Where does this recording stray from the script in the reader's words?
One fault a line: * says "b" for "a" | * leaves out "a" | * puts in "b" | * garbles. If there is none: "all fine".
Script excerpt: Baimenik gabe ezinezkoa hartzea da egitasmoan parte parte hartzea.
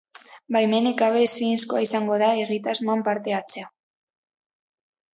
* says "izango" for "hartzea"
* leaves out "parte"